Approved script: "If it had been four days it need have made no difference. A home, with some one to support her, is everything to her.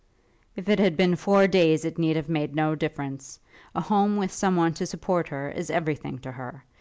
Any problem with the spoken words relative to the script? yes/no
no